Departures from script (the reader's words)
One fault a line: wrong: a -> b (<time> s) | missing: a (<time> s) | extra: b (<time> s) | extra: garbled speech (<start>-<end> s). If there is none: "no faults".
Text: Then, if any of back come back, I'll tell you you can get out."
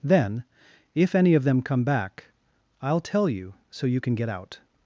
wrong: back -> them (1.4 s)
extra: so (3.7 s)